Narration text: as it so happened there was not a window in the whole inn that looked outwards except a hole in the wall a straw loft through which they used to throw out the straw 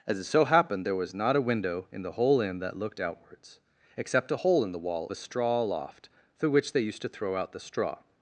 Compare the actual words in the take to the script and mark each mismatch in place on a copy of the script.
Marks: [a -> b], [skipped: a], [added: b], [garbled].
as it so happened there was not a window in the whole inn that looked outwards except a hole in the wall a straw loft through which they used to throw out the straw